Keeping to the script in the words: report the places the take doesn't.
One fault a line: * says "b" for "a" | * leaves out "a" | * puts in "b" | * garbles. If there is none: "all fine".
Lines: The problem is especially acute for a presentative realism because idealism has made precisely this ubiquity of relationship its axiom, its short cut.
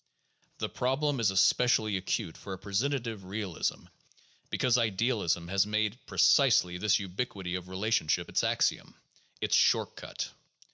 all fine